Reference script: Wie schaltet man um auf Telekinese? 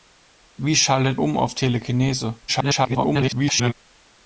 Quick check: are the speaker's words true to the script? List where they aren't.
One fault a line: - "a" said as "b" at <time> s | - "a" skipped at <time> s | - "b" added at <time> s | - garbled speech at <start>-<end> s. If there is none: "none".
- "man" skipped at 1.2 s
- garbled speech at 2.5-3.7 s